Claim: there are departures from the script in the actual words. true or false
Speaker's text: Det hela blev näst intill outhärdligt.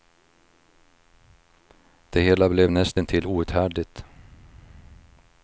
false